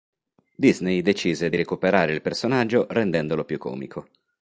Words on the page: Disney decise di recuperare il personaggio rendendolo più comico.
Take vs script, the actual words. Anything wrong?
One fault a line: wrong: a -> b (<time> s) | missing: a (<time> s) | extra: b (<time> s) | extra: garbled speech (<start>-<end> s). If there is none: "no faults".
no faults